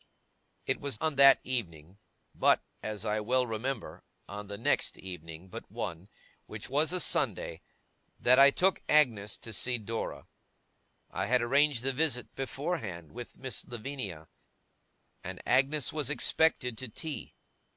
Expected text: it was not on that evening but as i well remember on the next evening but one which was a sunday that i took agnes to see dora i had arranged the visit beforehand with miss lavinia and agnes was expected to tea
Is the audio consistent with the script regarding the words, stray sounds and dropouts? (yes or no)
no